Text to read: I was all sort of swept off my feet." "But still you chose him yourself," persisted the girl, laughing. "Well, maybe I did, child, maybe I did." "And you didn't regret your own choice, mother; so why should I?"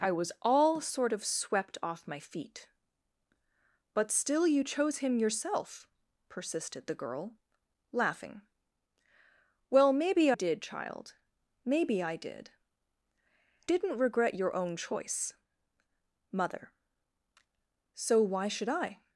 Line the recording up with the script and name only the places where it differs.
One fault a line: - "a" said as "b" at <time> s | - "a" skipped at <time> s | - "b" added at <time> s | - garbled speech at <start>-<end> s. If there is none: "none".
- "I" skipped at 10.3 s
- "And you" skipped at 12.5 s